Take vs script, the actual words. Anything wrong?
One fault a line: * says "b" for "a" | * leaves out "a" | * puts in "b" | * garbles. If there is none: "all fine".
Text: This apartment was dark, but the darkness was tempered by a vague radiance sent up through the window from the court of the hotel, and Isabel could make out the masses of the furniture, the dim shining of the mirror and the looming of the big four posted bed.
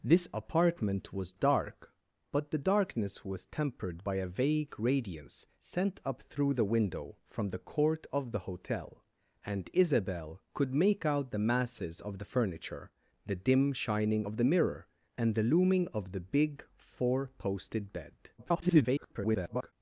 * garbles